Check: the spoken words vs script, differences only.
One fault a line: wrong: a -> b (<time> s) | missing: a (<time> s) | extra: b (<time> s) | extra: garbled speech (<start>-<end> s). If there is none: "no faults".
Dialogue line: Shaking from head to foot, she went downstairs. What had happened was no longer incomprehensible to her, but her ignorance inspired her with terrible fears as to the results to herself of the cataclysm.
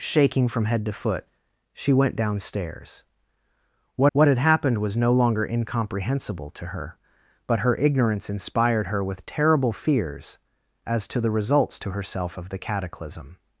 extra: what (4.1 s)